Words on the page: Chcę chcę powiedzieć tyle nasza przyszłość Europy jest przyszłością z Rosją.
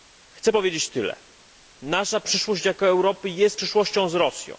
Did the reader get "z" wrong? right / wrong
right